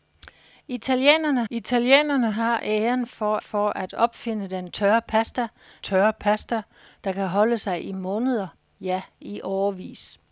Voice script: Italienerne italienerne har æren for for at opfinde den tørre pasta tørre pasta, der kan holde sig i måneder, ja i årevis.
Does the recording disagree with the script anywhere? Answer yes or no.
no